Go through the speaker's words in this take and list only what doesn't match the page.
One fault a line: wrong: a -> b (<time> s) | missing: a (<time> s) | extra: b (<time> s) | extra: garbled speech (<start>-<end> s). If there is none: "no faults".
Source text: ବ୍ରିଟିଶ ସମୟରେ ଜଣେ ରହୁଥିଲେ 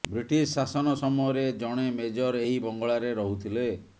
extra: ଶାସନ (0.5 s)
extra: ମେଜର ଏହି ବଙ୍ଗଳାରେ (2.0 s)